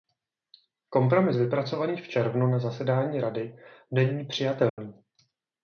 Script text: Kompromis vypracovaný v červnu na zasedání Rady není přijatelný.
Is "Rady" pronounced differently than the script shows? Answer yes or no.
no